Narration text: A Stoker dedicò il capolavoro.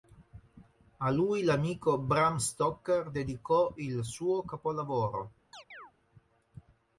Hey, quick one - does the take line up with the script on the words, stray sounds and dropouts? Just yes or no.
no